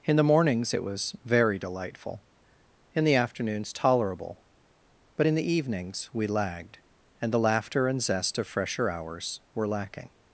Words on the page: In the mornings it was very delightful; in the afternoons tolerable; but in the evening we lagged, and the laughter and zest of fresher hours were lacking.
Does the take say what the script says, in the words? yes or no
no